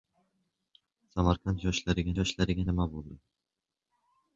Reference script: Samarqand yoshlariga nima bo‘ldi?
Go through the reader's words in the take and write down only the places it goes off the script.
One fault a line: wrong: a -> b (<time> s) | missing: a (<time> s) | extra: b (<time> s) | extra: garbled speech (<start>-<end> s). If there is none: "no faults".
extra: yoshlariga (2.2 s)